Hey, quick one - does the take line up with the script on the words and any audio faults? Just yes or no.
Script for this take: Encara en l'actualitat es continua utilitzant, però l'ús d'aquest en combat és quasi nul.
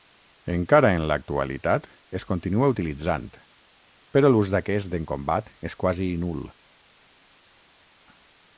yes